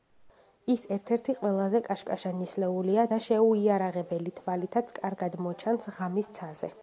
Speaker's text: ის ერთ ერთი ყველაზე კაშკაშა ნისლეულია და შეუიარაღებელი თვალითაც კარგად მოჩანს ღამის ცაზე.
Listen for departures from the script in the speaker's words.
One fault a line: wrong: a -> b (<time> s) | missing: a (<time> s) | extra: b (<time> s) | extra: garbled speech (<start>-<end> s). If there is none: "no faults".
no faults